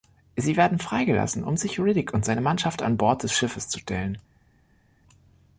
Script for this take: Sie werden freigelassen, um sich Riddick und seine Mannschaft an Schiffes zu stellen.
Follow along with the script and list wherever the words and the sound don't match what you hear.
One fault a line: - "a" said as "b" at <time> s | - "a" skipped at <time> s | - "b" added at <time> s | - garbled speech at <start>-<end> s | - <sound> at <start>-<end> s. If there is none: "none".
- "Bord des" added at 3.0 s